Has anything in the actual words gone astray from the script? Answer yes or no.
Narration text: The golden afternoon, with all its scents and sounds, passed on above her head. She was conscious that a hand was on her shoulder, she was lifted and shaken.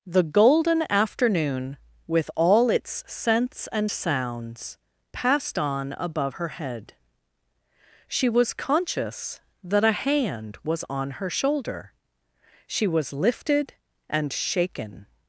no